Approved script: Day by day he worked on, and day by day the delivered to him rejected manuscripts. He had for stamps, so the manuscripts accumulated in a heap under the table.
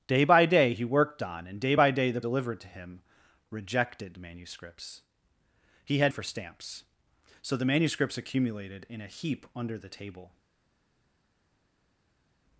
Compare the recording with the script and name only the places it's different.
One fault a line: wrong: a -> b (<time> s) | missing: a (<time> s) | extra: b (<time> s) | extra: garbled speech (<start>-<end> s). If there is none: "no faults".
no faults